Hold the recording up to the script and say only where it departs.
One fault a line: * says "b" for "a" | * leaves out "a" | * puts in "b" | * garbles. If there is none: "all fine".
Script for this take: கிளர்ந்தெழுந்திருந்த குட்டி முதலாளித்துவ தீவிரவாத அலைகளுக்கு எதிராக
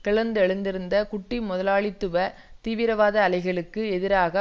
all fine